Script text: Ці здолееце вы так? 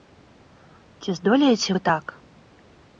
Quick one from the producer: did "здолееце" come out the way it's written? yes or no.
yes